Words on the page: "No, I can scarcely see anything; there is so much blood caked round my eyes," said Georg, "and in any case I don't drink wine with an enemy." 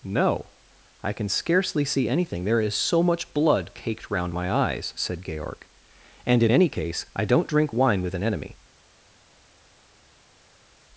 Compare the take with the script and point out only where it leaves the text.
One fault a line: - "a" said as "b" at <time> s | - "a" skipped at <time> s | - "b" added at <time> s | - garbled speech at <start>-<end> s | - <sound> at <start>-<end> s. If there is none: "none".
none